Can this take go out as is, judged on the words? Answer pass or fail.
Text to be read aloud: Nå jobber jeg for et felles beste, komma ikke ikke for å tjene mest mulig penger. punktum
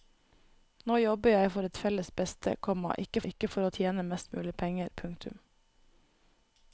pass